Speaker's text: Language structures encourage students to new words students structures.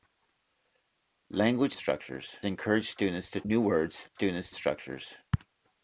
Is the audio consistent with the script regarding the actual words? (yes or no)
yes